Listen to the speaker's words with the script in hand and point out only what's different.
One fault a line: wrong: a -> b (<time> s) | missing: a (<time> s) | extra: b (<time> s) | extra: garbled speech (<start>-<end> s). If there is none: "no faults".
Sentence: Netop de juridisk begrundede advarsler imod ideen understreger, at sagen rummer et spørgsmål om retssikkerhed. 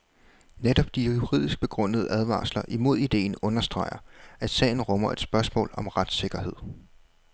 no faults